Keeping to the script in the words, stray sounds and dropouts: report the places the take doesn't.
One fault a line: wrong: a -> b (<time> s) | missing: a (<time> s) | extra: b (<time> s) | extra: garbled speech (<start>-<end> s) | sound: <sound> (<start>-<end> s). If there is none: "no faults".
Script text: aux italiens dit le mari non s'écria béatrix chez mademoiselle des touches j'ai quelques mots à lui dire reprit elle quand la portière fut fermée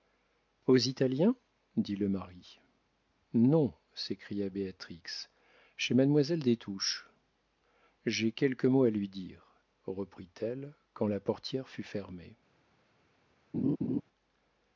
sound: laugh (13.5-14.0 s)